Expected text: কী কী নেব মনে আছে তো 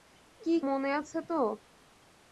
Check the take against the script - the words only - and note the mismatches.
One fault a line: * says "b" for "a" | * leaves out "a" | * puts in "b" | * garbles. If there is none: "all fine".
* leaves out "কী নেব"